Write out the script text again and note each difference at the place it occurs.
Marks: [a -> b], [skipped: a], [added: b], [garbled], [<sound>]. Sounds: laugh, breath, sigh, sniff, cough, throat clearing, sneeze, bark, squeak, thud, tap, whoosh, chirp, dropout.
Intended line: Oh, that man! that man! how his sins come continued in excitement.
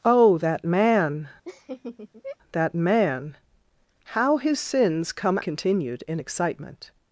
Oh, that man! [laugh] that man! how his sins come continued in excitement.